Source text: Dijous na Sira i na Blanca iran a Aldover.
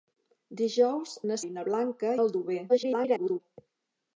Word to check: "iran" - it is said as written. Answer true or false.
false